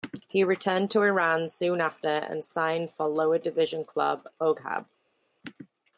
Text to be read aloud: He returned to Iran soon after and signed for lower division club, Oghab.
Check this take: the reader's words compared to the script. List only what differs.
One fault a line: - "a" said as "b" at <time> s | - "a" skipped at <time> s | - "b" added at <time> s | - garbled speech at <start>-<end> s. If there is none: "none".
none